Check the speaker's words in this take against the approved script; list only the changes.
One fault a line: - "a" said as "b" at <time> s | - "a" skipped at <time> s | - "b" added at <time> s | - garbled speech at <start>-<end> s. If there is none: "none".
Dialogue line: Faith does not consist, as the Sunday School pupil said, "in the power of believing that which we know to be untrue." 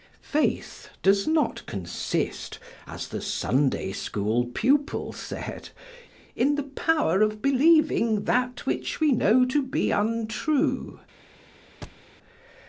none